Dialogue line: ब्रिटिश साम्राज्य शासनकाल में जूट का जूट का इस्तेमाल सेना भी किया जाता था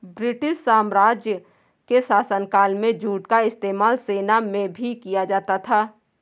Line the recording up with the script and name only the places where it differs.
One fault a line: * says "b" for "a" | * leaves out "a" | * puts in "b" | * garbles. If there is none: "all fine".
* puts in "के"
* leaves out "जूट का"
* puts in "में"